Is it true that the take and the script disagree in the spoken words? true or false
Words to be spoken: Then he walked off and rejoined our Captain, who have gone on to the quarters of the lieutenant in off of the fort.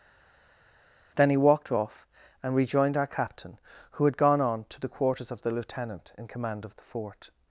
true